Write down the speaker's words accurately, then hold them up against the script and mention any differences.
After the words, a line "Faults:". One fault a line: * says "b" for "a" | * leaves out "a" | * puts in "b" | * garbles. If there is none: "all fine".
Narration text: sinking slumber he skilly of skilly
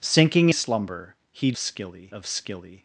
sinking slumber he skilly of skilly
Faults:
all fine